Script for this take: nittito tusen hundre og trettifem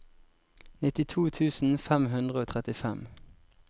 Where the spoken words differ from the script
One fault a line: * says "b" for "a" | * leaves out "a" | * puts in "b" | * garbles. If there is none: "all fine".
* puts in "fem"